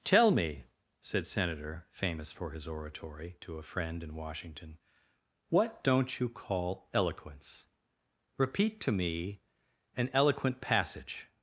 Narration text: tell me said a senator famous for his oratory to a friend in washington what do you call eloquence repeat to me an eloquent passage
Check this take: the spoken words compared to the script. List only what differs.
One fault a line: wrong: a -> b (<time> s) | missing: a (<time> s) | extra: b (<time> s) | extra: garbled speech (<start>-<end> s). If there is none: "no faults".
missing: a (1.3 s)
wrong: do -> don't (5.8 s)